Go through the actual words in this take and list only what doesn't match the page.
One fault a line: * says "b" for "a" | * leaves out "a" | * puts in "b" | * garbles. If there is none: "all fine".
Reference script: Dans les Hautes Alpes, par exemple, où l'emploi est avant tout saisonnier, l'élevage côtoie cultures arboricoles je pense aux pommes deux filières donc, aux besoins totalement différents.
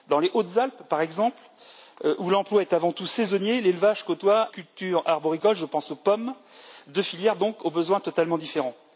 all fine